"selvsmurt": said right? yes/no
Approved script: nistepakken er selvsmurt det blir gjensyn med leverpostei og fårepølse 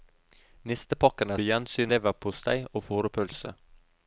no